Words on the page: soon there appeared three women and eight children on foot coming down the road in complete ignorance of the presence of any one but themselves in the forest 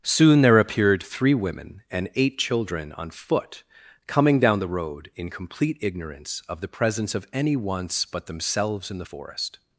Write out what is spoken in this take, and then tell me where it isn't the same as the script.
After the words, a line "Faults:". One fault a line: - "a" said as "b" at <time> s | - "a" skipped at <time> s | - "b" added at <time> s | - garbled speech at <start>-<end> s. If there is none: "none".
soon there appeared three women and eight children on foot coming down the road in complete ignorance of the presence of any once but themselves in the forest
Faults:
- "one" said as "once" at 7.6 s